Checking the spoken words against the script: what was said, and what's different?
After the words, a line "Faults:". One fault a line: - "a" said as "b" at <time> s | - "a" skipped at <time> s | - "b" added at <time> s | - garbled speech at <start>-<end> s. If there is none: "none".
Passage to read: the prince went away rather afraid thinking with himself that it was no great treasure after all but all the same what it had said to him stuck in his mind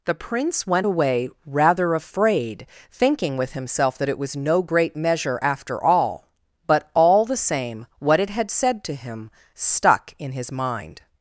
the prince went away rather afraid thinking with himself that it was no great measure after all but all the same what it had said to him stuck in his mind
Faults:
- "treasure" said as "measure" at 5.0 s